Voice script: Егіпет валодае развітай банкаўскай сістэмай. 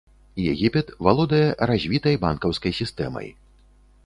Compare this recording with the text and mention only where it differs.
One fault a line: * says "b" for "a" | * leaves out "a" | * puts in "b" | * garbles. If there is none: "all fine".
all fine